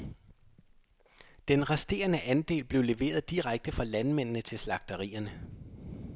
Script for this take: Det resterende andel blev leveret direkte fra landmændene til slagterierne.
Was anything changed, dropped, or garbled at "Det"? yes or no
yes